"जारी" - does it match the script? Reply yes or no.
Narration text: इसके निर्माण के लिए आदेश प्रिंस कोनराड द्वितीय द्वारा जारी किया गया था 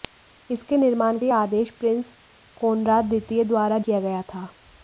no